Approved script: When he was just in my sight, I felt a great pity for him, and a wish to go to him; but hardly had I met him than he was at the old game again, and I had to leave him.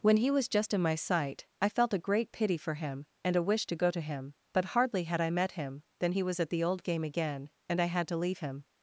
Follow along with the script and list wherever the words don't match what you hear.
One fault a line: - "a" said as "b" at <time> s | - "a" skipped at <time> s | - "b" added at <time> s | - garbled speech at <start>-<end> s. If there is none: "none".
none